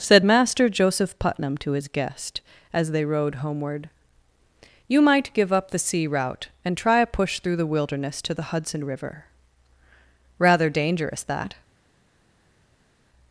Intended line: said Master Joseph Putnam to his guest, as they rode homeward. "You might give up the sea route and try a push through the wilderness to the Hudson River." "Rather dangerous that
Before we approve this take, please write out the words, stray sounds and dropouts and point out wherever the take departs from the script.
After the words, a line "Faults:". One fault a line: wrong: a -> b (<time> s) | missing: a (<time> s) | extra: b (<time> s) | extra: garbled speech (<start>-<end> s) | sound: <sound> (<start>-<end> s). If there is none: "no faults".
said Master Joseph Putnam to his guest, as they rode homeward. "You might give up the sea route and try a push through the wilderness to the Hudson River." "Rather dangerous that
Faults:
no faults